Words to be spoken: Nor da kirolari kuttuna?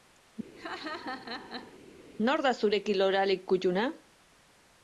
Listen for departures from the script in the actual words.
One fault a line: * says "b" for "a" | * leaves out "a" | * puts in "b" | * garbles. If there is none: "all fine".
* puts in "zure"